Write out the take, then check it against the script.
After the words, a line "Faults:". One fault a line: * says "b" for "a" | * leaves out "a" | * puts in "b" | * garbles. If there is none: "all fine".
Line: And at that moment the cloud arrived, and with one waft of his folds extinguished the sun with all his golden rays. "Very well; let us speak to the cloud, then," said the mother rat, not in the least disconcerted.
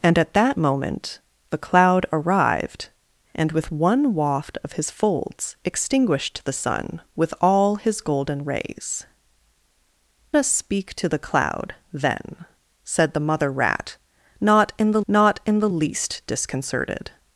And at that moment the cloud arrived, and with one waft of his folds extinguished the sun with all his golden rays. "Us speak to the cloud, then," said the mother rat, not in the not in the least disconcerted.
Faults:
* leaves out "Very well let"
* puts in "not in the"